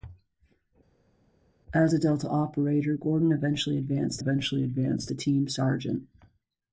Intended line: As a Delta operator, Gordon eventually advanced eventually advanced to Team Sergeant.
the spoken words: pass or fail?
pass